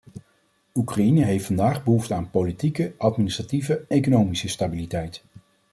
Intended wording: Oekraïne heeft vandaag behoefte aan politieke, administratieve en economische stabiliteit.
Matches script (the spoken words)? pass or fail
fail